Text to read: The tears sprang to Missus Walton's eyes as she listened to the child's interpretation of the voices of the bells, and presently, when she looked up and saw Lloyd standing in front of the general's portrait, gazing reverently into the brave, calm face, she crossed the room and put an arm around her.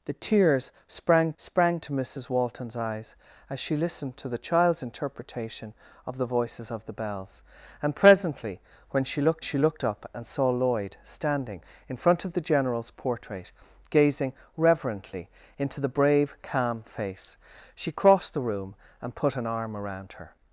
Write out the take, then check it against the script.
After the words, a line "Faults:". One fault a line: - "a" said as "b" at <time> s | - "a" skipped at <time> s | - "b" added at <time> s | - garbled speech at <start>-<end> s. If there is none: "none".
The tears sprang sprang to Missus Walton's eyes as she listened to the child's interpretation of the voices of the bells, and presently, when she looked she looked up and saw Lloyd standing in front of the general's portrait, gazing reverently into the brave, calm face, she crossed the room and put an arm around her.
Faults:
- "sprang" added at 1.4 s
- "she looked" added at 9.4 s